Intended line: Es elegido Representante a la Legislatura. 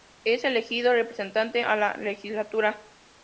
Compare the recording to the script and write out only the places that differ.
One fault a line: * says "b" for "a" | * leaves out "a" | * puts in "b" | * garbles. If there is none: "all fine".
all fine